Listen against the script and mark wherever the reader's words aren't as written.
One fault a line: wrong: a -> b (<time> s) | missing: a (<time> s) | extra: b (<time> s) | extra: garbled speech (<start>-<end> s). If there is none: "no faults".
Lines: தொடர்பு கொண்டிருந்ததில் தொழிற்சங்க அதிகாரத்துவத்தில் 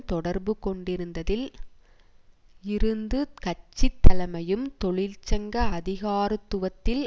extra: இருந்து கட்சி தலைமையும் (2.6 s)